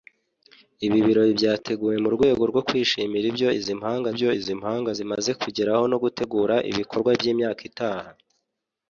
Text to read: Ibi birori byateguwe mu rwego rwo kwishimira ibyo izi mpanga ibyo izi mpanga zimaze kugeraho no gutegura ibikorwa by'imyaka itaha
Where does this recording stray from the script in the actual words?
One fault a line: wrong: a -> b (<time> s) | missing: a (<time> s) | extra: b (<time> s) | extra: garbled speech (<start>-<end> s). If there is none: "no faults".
no faults